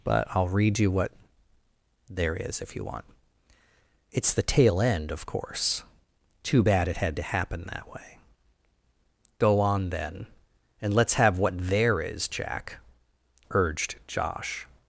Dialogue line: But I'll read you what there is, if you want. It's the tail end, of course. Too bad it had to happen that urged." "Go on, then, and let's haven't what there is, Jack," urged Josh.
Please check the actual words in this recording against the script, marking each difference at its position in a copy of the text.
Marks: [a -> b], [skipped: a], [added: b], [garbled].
But I'll read you what there is, if you want. It's the tail end, of course. Too bad it had to happen that [urged." -> way] "Go on, then, and let's [haven't -> have] what there is, Jack," urged Josh.